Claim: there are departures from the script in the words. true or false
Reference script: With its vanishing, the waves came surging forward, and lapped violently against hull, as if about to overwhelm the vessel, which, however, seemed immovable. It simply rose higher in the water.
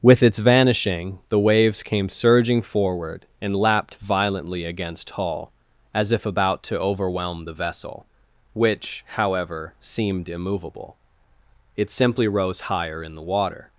false